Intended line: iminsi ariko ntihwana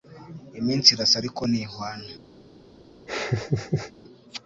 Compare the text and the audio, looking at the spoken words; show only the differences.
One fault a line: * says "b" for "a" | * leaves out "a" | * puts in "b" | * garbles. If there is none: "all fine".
* puts in "irasa"